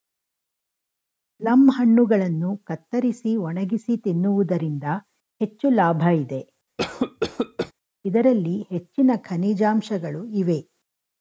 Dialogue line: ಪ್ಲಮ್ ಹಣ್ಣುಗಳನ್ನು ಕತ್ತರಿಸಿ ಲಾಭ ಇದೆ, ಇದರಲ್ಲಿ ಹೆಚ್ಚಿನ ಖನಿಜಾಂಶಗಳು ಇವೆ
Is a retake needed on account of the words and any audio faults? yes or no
yes